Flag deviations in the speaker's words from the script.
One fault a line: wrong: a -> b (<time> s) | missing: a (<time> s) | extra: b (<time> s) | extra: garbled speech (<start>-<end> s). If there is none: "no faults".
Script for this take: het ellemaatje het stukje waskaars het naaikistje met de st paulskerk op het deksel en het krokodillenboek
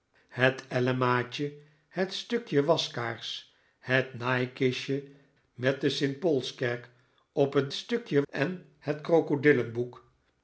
wrong: deksel -> stukje (7.7 s)